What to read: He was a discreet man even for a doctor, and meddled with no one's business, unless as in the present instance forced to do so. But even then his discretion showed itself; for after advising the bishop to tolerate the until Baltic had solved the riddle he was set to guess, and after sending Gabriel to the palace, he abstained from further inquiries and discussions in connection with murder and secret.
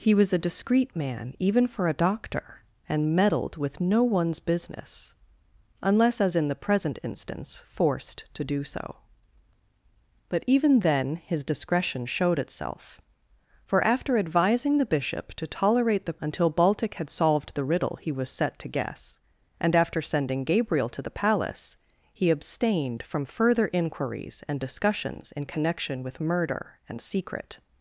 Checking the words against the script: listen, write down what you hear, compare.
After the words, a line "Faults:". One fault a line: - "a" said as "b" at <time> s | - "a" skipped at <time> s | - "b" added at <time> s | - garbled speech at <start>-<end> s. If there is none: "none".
He was a discreet man even for a doctor, and meddled with no one's business, unless as in the present instance forced to do so. But even then his discretion showed itself; for after advising the bishop to tolerate the until Baltic had solved the riddle he was set to guess, and after sending Gabriel to the palace, he abstained from further inquiries and discussions in connection with murder and secret.
Faults:
none